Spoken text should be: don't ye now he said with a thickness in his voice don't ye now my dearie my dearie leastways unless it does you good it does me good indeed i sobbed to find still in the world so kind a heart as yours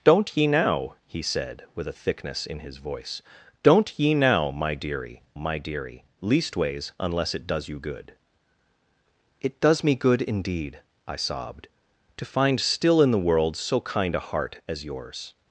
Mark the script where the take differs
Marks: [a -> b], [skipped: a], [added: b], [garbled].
don't ye now he said with a thickness in his voice don't ye now my dearie my dearie leastways unless it does you good it does me good indeed i sobbed to find still in the world so kind a heart as yours